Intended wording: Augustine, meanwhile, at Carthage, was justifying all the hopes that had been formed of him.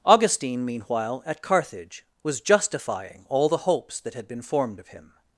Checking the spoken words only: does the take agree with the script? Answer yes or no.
yes